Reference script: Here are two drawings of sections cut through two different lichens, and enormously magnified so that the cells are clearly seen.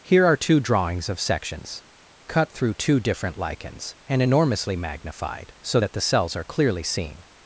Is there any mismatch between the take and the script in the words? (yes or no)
no